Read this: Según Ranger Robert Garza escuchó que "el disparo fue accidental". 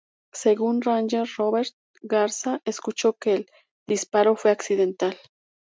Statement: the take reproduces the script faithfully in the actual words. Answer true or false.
true